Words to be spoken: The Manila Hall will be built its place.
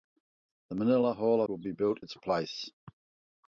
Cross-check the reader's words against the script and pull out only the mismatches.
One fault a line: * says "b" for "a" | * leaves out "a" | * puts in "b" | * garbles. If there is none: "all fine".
all fine